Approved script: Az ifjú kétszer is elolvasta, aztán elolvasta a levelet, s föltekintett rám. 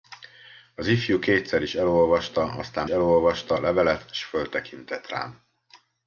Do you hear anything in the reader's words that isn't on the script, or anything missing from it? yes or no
no